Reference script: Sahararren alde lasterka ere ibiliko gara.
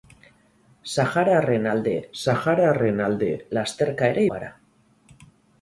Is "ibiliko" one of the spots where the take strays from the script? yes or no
yes